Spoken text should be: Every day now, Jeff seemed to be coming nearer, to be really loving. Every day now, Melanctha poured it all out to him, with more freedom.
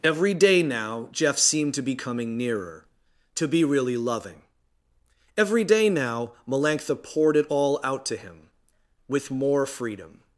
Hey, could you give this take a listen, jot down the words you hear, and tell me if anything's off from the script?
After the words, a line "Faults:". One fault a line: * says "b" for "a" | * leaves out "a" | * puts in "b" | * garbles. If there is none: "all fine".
Every day now, Jeff seemed to be coming nearer, to be really loving. Every day now, Melanctha poured it all out to him, with more freedom.
Faults:
all fine